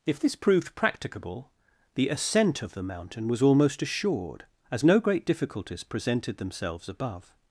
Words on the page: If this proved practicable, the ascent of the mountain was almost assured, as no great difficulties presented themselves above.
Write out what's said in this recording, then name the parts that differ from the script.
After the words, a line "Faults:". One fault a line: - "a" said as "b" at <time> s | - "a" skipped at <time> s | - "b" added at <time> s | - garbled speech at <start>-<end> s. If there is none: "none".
If this proved practicable, the ascent of the mountain was almost assured, as no great difficulties presented themselves above.
Faults:
none